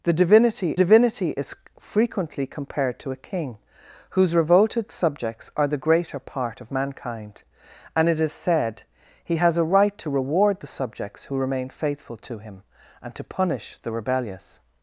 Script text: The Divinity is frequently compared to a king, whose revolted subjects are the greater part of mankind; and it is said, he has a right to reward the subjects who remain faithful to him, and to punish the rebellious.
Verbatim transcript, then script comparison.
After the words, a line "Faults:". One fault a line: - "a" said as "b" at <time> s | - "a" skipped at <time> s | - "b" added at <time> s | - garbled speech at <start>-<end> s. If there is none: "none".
The Divinity Divinity is frequently compared to a king, whose revolted subjects are the greater part of mankind; and it is said, he has a right to reward the subjects who remain faithful to him, and to punish the rebellious.
Faults:
- "Divinity" added at 0.8 s